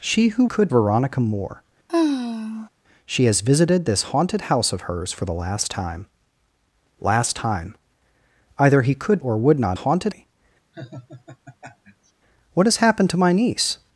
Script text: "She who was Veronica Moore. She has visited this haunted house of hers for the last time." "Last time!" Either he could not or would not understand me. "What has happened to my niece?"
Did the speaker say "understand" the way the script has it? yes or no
no